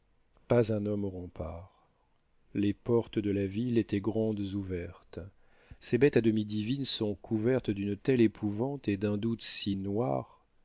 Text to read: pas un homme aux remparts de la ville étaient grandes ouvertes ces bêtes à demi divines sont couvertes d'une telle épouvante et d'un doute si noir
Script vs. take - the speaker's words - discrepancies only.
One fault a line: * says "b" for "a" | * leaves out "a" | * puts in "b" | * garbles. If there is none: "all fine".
* puts in "les portes"